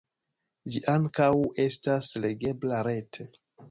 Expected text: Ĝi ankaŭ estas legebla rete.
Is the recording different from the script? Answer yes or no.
no